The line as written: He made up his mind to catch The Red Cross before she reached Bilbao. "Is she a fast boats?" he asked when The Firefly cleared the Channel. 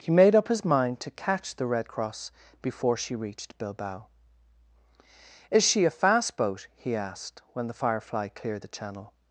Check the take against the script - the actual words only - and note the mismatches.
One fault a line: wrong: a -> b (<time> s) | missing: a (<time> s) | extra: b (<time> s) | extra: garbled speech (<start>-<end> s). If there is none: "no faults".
wrong: boats -> boat (6.4 s)